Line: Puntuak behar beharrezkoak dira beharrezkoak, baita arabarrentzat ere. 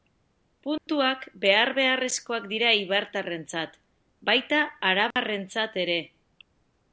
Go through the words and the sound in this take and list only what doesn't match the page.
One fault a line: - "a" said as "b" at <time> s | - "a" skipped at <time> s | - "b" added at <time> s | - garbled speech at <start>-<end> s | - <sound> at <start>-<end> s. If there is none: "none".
- dropout at 0.8-0.9 s
- "beharrezkoak" said as "eibartarrentzat" at 2.8 s
- dropout at 5.1-5.2 s